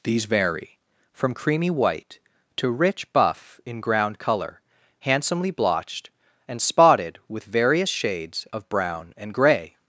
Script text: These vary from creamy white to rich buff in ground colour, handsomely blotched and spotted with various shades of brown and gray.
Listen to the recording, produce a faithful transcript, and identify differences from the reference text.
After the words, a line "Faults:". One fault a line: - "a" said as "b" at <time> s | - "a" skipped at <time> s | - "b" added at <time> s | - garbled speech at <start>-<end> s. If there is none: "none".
These vary from creamy white to rich buff in ground colour, handsomely blotched and spotted with various shades of brown and gray.
Faults:
none